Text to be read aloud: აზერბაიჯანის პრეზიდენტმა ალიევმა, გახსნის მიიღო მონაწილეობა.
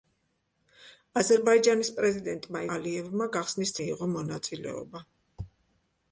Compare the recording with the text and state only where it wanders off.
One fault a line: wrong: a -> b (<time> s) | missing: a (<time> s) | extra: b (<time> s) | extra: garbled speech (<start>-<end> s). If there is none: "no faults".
no faults